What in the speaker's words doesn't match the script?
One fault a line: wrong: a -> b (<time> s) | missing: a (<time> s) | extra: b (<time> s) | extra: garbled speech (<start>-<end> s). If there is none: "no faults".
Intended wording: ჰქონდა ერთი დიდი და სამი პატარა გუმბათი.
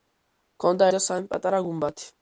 missing: ერთი დიდი (0.9 s)